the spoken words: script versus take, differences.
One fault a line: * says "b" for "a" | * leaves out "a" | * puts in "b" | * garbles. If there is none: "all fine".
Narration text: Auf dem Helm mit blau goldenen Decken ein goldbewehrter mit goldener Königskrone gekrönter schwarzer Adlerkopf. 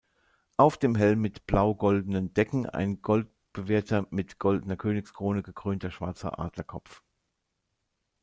all fine